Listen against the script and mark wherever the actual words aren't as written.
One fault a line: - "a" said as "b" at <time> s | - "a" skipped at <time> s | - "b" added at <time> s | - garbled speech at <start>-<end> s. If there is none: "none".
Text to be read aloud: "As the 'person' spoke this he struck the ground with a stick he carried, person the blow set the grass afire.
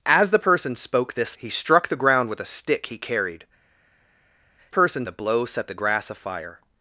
none